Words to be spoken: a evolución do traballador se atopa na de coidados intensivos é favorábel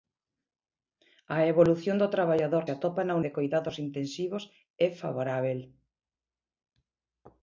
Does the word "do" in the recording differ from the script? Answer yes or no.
no